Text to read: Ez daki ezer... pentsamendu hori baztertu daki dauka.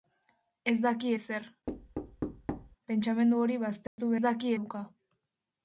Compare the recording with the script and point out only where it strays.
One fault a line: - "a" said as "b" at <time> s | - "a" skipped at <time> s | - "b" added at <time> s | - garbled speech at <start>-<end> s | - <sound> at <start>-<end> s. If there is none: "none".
- thud at 1.7-2.8 s
- dropout at 3.9-4.0 s